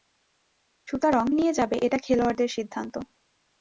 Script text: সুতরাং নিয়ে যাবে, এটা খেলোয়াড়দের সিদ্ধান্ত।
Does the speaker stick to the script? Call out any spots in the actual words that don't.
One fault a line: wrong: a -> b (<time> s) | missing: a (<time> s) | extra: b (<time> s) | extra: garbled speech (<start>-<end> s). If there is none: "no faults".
no faults